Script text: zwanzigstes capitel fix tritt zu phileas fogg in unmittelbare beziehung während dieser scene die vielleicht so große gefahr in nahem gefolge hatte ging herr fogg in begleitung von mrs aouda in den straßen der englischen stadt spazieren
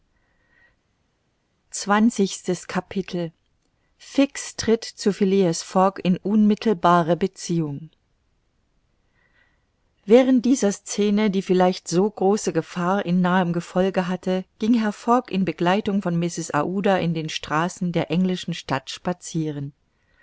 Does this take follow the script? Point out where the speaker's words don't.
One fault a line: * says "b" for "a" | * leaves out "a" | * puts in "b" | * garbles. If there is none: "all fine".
all fine